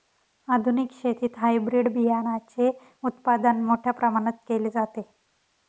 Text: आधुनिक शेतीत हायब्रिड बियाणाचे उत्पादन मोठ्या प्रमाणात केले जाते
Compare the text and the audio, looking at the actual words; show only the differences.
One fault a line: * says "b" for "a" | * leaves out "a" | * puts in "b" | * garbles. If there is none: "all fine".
all fine